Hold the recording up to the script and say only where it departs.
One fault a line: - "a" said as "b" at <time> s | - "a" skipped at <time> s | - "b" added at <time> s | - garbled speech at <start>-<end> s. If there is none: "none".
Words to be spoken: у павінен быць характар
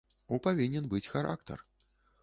none